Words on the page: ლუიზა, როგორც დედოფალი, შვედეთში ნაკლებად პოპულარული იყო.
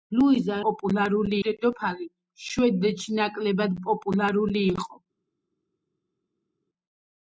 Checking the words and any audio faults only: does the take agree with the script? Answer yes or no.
no